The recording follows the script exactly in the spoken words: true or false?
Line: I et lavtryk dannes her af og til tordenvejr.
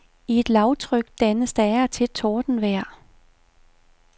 false